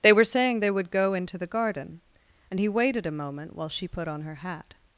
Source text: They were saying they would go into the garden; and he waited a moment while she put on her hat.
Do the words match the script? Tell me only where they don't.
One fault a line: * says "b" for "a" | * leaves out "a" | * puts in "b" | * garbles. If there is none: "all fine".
all fine